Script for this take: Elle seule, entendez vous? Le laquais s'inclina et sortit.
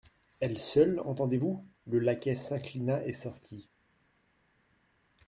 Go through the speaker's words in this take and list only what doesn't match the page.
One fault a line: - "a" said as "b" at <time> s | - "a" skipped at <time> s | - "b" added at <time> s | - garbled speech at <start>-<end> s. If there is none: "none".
none